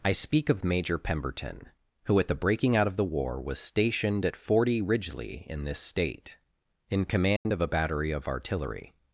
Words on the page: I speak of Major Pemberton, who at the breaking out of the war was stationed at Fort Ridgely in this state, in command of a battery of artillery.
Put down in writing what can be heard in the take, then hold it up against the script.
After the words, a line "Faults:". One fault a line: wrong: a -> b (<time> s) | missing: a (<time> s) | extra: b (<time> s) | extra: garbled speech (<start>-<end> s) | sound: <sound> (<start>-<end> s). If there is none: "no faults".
I speak of Major Pemberton, who at the breaking out of the war was stationed at Forty Ridgely in this state, in command of a battery of artillery.
Faults:
wrong: Fort -> Forty (4.3 s)
sound: dropout (7.4-7.5 s)